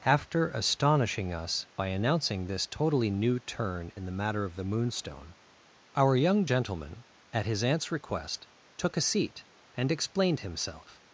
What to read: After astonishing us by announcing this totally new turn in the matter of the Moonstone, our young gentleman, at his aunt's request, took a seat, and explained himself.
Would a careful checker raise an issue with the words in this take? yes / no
no